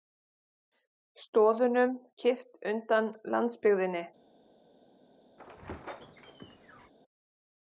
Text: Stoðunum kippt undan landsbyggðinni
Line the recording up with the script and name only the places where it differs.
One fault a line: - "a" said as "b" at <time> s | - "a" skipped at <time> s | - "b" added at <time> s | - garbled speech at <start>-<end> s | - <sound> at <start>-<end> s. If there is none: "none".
- squeak at 5.4-6.9 s